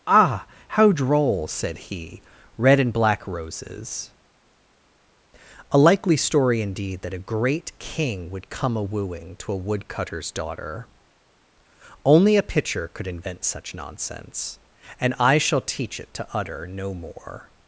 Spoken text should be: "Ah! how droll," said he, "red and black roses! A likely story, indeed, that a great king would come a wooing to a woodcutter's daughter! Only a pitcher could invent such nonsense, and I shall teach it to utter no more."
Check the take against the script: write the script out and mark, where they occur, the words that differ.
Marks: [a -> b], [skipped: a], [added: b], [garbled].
"Ah! how droll," said he, "red and black roses! A likely story, indeed, that a great king would come a wooing to a woodcutter's daughter! Only a pitcher could invent such nonsense, and I shall teach it to utter no more."